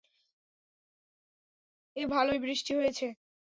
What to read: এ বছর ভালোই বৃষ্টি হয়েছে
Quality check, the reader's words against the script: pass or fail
fail